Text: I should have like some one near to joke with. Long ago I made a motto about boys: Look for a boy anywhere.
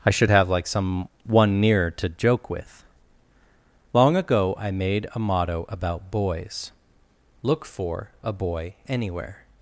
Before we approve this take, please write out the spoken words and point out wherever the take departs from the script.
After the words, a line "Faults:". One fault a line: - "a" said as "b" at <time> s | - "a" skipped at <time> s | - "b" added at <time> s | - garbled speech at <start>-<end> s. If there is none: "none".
I should have like some one near to joke with. Long ago I made a motto about boys: Look for a boy anywhere.
Faults:
none